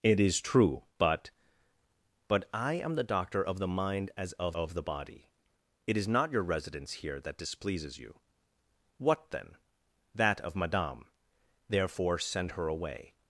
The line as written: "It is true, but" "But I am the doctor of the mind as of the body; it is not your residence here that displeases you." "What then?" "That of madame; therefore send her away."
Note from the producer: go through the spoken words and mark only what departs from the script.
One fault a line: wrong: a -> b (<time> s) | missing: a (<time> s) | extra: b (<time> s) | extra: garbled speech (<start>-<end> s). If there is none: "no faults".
extra: of (4.5 s)